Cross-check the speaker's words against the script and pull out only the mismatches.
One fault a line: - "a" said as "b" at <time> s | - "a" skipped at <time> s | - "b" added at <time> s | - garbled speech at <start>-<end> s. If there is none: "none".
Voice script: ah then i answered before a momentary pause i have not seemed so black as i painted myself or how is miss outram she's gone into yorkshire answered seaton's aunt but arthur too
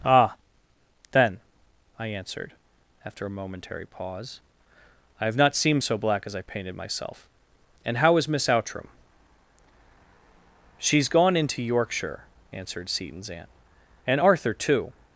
- "before" said as "after" at 3.0 s
- "or" said as "and" at 7.8 s
- "but" said as "and" at 14.1 s